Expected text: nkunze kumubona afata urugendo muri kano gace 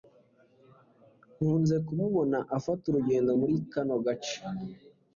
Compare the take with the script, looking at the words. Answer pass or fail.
pass